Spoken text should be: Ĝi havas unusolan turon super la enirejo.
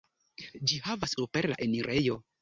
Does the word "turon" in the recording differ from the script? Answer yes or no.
yes